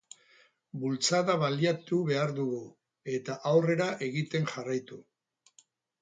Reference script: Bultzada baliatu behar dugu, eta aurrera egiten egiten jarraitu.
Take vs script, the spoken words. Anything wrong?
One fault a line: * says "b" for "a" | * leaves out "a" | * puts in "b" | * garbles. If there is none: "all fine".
* leaves out "egiten"